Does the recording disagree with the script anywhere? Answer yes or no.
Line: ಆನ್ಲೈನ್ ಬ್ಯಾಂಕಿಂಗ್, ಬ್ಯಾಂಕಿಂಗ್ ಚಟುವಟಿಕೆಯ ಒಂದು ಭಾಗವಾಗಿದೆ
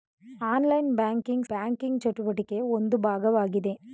no